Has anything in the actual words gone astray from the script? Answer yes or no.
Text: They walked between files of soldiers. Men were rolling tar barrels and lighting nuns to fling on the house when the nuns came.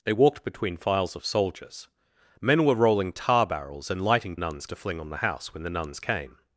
no